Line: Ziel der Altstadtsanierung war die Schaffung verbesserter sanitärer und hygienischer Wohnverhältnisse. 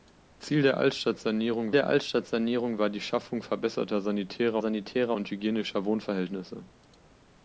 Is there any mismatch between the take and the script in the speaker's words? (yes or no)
yes